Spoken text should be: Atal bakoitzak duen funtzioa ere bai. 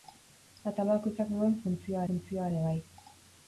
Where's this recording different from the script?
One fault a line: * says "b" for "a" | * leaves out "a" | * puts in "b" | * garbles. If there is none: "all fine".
* puts in "funtzioa"